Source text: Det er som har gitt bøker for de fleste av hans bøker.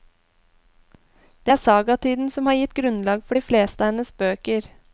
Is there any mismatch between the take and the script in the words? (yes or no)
yes